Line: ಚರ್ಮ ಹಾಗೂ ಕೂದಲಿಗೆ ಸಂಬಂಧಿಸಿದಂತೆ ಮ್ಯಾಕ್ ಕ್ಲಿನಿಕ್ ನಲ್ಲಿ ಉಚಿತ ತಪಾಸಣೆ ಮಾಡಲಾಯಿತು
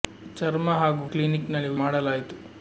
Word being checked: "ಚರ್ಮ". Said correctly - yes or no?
yes